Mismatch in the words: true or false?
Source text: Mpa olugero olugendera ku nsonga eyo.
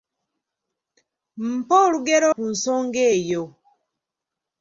true